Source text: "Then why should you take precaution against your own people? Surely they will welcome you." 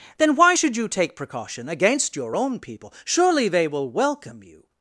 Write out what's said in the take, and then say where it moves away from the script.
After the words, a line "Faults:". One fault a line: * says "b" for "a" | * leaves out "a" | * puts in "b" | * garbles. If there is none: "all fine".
"Then why should you take precaution against your own people? Surely they will welcome you."
Faults:
all fine